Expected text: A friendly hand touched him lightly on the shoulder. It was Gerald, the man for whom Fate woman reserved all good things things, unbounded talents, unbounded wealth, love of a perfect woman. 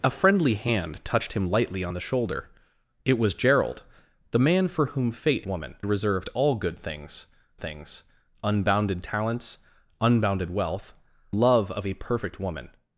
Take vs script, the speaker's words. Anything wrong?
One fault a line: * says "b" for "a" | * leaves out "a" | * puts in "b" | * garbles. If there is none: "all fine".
all fine